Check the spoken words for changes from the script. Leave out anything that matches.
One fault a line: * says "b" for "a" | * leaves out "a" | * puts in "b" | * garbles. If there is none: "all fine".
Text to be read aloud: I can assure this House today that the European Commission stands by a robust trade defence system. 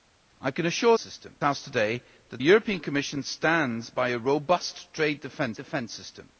* says "system" for "this"
* leaves out "the"
* puts in "defence"